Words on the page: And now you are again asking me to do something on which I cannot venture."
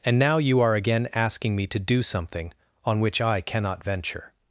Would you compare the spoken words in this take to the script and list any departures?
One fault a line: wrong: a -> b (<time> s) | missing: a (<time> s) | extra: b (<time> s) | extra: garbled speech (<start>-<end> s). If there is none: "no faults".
no faults